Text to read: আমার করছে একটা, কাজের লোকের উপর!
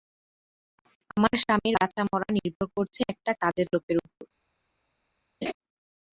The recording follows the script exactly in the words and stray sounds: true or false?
false